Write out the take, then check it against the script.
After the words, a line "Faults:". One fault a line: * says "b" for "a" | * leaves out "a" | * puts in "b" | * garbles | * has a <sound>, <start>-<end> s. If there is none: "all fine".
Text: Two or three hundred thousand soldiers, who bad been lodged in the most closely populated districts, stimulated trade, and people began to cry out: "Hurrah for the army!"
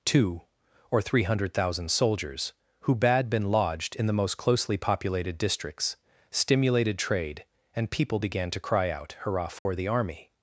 Two or three hundred thousand soldiers, who bad been lodged in the most closely populated districts, stimulated trade, and people began to cry out: "Hurrah for the army!"
Faults:
* has a dropout, 9.6-9.7 s